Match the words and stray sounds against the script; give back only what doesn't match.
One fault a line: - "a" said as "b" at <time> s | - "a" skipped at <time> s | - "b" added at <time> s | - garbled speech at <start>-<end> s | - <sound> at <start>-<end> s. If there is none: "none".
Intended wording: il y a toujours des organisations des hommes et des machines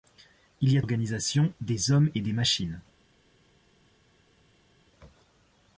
- "toujours des" skipped at 0.8 s